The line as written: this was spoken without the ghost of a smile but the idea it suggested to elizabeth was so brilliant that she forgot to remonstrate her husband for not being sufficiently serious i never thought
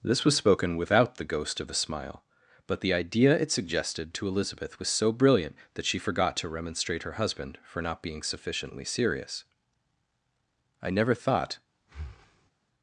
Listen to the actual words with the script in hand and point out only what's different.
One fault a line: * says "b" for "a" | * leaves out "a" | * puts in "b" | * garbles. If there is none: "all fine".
all fine